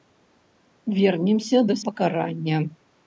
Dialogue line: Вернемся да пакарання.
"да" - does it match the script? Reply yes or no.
yes